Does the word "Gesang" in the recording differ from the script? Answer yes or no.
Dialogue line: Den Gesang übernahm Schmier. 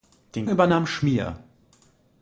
yes